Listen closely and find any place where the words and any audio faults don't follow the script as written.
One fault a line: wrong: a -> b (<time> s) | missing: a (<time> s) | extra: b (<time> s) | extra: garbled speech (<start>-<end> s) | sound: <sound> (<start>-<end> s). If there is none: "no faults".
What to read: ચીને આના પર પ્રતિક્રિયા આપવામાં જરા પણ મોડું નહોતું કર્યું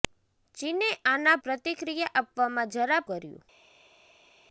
missing: પર (1.4 s)
missing: પણ મોડું નહોતું (3.0 s)